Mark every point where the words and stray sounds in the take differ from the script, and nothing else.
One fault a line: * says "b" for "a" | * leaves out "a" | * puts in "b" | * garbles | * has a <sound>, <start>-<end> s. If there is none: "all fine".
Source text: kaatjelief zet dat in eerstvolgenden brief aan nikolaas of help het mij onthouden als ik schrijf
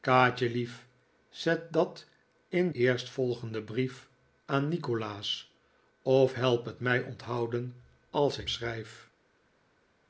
all fine